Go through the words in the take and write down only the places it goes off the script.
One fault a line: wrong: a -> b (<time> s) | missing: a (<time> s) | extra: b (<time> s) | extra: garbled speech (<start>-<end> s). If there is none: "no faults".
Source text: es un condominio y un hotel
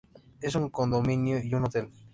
no faults